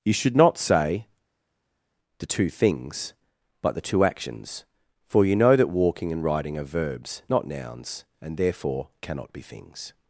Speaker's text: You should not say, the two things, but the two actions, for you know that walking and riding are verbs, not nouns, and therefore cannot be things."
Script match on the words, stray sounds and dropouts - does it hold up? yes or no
yes